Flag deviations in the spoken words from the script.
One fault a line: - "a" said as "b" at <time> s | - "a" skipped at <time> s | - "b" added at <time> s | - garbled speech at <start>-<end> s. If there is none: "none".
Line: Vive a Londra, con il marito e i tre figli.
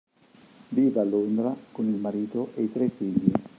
none